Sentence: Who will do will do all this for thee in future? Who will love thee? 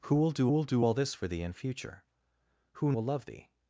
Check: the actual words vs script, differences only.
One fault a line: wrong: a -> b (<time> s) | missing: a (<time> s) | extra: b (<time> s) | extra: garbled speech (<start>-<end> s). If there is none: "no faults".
no faults